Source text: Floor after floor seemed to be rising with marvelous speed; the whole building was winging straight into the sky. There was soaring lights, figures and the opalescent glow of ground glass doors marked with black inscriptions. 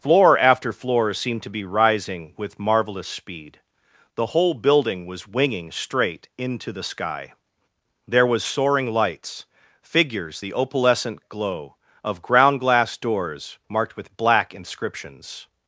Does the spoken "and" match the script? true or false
false